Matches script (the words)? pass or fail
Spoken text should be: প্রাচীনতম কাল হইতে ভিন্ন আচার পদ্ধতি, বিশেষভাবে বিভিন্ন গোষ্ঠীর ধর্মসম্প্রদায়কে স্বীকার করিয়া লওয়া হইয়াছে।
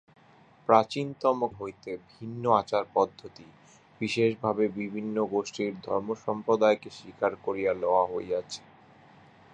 fail